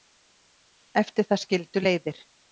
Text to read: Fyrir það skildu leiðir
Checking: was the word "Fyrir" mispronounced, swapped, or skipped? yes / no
yes